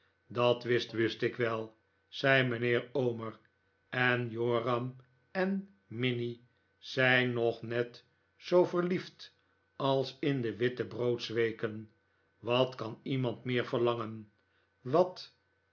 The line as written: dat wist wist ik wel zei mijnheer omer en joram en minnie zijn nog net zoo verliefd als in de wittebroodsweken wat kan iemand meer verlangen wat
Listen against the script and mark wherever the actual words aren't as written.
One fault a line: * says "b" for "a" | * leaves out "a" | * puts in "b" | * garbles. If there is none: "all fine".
all fine